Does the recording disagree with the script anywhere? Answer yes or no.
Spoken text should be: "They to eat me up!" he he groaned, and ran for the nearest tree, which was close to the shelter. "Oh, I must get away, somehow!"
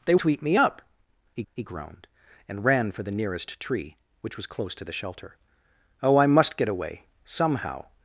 no